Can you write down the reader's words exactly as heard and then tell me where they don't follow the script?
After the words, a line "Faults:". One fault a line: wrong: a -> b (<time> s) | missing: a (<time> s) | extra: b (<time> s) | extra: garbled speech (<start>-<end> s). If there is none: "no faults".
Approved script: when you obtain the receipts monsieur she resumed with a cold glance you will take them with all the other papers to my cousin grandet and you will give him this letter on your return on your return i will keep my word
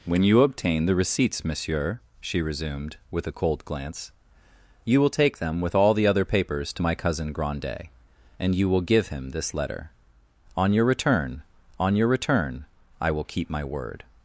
when you obtain the receipts monsieur she resumed with a cold glance you will take them with all the other papers to my cousin grandet and you will give him this letter on your return on your return i will keep my word
Faults:
no faults